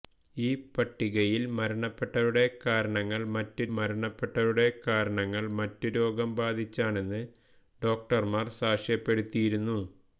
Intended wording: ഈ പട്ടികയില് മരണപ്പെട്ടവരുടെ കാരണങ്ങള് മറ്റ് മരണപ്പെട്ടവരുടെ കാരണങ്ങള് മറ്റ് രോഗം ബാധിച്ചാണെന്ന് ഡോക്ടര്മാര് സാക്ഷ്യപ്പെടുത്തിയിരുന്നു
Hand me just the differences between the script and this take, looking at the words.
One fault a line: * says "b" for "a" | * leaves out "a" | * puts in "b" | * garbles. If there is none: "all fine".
all fine